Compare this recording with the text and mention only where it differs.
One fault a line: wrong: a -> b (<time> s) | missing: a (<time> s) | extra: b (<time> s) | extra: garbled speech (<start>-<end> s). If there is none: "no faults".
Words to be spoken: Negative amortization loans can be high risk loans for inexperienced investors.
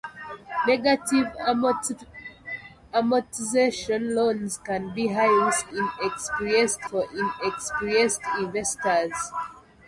wrong: loans -> inexperienced (5.7 s)